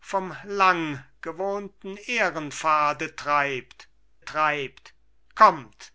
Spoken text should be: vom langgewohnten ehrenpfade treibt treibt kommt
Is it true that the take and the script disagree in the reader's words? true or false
false